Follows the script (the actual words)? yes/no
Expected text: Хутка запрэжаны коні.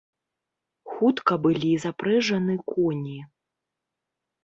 no